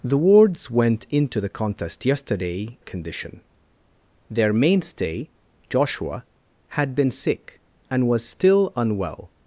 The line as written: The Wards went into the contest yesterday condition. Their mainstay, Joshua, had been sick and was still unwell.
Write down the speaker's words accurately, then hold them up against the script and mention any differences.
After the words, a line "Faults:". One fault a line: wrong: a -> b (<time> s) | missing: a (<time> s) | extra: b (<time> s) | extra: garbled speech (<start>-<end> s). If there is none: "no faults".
The Wards went into the contest yesterday condition. Their mainstay, Joshua, had been sick and was still unwell.
Faults:
no faults